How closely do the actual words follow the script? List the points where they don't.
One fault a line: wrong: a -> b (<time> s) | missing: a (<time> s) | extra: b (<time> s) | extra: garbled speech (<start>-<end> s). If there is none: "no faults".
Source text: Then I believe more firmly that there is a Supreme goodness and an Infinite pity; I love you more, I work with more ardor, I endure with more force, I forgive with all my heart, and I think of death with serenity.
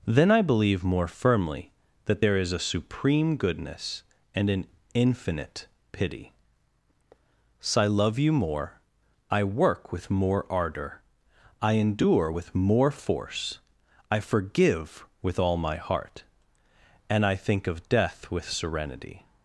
extra: so (7.6 s)